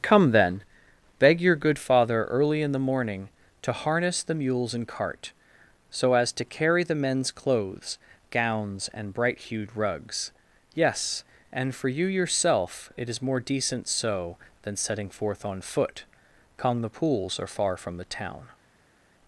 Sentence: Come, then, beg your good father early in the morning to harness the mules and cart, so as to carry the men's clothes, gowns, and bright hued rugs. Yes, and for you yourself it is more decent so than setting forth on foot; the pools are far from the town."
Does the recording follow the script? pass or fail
fail